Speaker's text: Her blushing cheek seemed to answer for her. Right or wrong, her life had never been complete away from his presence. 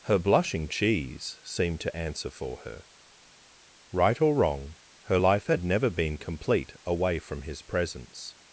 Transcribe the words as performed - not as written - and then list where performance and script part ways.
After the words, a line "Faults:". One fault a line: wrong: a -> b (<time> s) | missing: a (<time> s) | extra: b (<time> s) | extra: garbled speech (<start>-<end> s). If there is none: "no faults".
Her blushing cheese seemed to answer for her. Right or wrong, her life had never been complete away from his presence.
Faults:
wrong: cheek -> cheese (0.7 s)